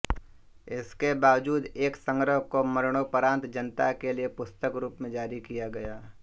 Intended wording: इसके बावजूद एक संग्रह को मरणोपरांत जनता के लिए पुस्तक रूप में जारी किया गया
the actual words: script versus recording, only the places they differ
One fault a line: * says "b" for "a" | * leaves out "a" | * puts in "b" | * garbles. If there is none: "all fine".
all fine